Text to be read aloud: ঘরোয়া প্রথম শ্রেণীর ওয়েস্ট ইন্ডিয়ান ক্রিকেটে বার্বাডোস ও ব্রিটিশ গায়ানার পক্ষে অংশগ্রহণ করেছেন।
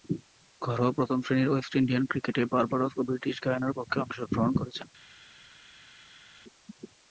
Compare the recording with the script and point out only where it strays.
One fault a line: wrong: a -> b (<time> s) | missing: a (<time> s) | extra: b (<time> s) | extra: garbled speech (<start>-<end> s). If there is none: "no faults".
no faults